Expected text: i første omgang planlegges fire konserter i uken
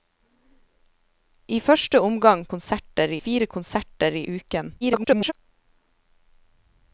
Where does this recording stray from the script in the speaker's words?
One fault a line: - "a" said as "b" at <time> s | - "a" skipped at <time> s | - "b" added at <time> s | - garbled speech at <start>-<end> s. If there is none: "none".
- "planlegges" said as "konserter" at 2.5 s
- garbled speech at 4.8-5.3 s